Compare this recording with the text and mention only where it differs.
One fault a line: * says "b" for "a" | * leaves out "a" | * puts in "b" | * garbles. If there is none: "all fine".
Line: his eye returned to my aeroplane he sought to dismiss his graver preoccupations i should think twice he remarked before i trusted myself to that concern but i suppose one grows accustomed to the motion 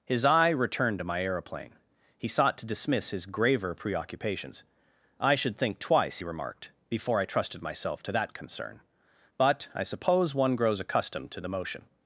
all fine